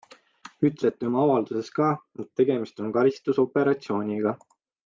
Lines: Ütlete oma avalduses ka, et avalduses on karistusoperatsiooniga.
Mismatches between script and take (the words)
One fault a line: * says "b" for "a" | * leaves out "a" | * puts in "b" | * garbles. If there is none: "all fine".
* says "tegemist" for "avalduses"